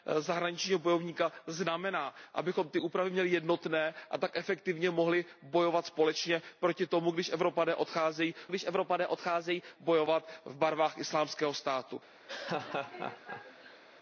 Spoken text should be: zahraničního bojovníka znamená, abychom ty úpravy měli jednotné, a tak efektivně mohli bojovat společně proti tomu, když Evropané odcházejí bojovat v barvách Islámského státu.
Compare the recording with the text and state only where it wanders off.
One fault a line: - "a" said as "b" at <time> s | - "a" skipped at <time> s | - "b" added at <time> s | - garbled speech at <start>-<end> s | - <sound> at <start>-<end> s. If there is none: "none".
- "když Evropané odcházejí" added at 8.5 s
- laugh at 12.3-13.8 s